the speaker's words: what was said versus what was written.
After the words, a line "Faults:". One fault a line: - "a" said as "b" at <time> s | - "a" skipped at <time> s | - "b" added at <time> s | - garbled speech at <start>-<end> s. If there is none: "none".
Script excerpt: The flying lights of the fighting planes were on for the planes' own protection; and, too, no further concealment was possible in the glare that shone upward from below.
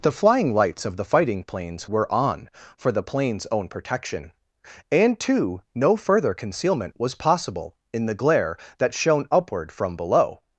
The flying lights of the fighting planes were on for the planes' own protection; and, too, no further concealment was possible in the glare that shone upward from below.
Faults:
none